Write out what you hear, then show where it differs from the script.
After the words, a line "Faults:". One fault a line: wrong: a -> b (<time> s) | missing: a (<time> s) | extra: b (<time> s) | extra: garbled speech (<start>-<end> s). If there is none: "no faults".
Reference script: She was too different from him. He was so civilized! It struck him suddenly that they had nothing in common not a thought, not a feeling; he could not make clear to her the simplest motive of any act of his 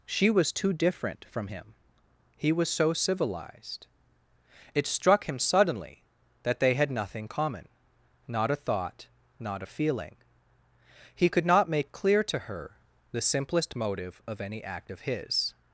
She was too different from him. He was so civilized! It struck him suddenly that they had nothing common not a thought, not a feeling; he could not make clear to her the simplest motive of any act of his
Faults:
missing: in (7.3 s)